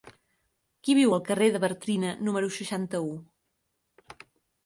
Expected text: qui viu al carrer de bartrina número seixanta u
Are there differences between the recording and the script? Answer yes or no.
no